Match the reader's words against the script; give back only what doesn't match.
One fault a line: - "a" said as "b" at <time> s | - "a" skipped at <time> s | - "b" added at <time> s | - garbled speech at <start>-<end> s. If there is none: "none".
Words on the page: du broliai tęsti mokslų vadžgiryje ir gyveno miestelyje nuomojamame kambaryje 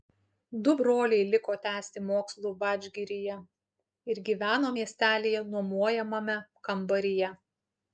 - "liko" added at 1.3 s